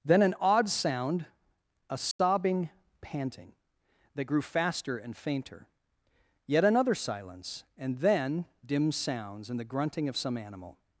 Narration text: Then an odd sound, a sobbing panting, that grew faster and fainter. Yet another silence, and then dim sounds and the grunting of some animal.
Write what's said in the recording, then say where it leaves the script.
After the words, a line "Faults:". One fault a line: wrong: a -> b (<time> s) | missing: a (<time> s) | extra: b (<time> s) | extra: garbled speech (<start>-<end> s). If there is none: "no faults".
Then an odd sound, a sobbing panting, that grew faster and fainter. Yet another silence, and then dim sounds and the grunting of some animal.
Faults:
no faults